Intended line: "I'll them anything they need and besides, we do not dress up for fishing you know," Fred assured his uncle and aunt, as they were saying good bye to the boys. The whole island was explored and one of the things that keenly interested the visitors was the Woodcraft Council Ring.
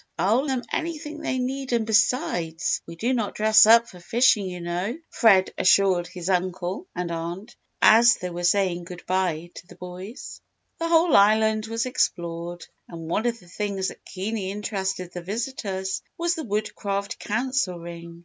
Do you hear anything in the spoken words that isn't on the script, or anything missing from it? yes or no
no